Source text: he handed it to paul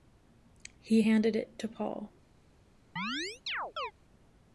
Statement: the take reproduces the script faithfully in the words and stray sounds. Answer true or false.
false